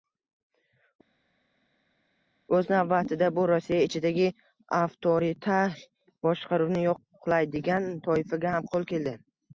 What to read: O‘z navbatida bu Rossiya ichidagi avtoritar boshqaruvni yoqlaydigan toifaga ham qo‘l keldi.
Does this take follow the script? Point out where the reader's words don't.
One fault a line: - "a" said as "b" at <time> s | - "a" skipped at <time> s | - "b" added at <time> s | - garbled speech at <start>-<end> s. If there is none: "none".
none